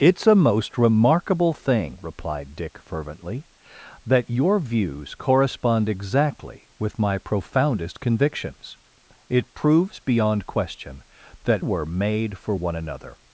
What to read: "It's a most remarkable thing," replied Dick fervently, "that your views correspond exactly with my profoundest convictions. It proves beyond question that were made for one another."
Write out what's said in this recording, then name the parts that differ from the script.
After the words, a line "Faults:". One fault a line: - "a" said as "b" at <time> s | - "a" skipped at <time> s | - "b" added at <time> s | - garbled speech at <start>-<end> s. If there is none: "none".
"It's a most remarkable thing," replied Dick fervently, "that your views correspond exactly with my profoundest convictions. It proves beyond question that were made for one another."
Faults:
none